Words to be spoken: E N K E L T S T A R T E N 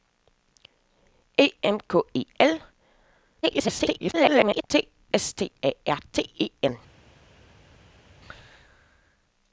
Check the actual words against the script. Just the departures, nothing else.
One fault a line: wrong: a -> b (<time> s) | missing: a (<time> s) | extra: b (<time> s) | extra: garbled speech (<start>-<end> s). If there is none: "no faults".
extra: garbled speech (3.4-4.6 s)